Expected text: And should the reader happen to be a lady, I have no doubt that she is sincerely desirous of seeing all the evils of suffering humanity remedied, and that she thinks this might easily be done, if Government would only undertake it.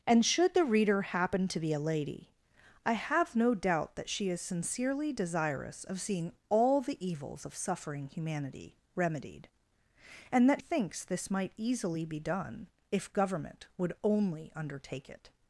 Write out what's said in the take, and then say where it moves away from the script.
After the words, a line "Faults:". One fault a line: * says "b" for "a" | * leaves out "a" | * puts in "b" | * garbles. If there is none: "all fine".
And should the reader happen to be a lady, I have no doubt that she is sincerely desirous of seeing all the evils of suffering humanity remedied, and that thinks this might easily be done, if Government would only undertake it.
Faults:
* leaves out "she"